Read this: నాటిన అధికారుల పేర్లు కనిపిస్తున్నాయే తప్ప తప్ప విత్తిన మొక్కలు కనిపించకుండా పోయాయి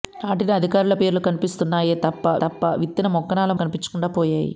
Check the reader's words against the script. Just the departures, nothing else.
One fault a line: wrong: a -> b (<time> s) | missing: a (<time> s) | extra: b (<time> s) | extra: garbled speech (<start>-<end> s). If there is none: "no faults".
no faults